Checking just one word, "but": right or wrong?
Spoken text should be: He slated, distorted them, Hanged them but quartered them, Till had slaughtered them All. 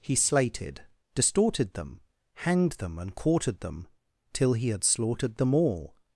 wrong